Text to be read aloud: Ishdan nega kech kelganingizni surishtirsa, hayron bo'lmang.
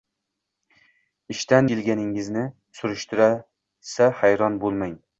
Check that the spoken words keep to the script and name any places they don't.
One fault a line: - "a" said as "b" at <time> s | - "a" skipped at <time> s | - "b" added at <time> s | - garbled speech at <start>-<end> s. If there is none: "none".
- "nega kech" skipped at 1.7 s